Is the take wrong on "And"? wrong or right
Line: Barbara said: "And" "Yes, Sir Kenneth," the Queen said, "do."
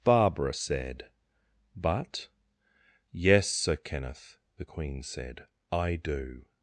wrong